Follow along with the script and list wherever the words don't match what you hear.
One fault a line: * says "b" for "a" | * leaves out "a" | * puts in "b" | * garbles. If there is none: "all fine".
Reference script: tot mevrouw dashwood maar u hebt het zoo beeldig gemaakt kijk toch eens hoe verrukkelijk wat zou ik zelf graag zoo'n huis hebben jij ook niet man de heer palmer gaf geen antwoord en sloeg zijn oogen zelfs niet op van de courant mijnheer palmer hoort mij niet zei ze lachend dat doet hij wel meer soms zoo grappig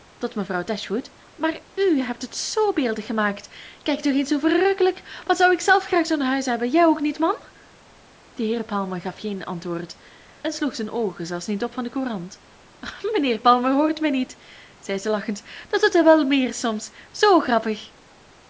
all fine